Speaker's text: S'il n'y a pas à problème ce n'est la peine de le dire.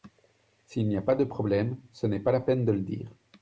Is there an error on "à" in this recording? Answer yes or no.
yes